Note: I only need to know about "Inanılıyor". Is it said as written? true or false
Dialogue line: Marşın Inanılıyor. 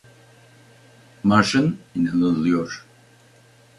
true